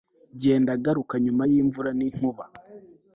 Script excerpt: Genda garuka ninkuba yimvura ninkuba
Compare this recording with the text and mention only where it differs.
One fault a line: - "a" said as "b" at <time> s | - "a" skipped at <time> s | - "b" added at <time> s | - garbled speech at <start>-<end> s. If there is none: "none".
- "ninkuba" said as "nyuma" at 1.2 s